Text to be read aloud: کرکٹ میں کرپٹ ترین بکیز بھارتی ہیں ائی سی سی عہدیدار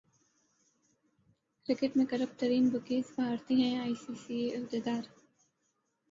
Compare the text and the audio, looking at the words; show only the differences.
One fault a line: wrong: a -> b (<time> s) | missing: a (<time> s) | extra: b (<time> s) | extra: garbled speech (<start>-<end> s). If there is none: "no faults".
no faults